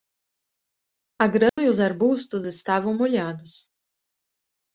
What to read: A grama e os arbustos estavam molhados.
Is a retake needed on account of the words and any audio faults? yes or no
yes